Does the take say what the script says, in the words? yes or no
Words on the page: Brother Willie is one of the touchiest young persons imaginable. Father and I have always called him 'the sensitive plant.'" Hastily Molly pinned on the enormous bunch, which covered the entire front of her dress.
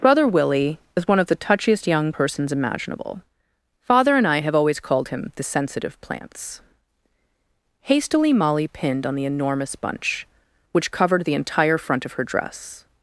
no